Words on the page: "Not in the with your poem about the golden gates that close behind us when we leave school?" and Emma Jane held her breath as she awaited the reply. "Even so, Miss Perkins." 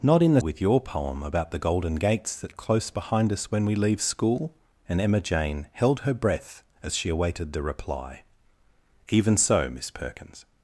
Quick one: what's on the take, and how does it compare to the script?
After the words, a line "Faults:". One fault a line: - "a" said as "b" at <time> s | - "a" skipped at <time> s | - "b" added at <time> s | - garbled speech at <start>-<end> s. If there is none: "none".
"Not in the with your poem about the golden gates that close behind us when we leave school?" and Emma Jane held her breath as she awaited the reply. "Even so, Miss Perkins."
Faults:
none